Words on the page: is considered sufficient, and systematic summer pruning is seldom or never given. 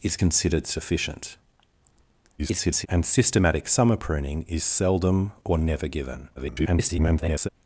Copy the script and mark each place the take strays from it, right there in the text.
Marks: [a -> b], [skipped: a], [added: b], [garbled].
is considered sufficient, [garbled] and systematic summer pruning is seldom or never given. [garbled]